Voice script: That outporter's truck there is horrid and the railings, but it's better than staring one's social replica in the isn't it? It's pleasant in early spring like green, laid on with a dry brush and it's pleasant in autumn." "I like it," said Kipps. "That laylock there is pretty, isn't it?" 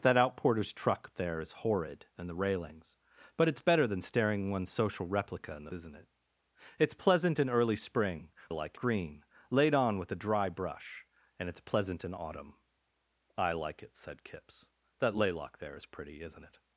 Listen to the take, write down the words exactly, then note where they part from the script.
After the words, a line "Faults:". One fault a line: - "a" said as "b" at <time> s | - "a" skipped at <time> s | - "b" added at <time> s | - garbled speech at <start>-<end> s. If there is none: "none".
That outporter's truck there is horrid and the railings, but it's better than staring one's social replica in the isn't it? It's pleasant in early spring like green, laid on with a dry brush and it's pleasant in autumn." "I like it," said Kipps. "That laylock there is pretty, isn't it?"
Faults:
none